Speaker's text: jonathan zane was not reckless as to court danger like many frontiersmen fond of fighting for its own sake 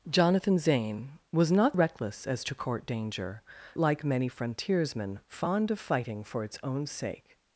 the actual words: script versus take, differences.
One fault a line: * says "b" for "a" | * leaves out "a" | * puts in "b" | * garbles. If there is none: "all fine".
all fine